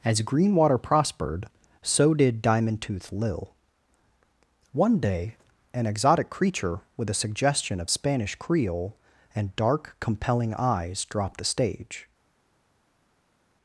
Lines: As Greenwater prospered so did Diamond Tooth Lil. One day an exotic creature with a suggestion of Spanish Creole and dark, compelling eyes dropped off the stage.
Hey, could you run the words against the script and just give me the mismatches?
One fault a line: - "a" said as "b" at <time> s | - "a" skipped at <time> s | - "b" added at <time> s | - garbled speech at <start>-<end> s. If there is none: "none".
- "off" skipped at 11.4 s